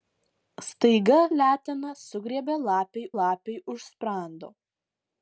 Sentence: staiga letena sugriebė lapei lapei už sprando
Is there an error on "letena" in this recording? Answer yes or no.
no